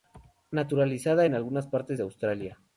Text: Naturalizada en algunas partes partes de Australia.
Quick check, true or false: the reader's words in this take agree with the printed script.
false